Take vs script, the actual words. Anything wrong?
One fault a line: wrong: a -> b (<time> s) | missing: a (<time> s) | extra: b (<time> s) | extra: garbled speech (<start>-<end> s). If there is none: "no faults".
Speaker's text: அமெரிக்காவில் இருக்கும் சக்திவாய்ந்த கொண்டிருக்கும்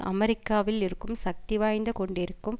no faults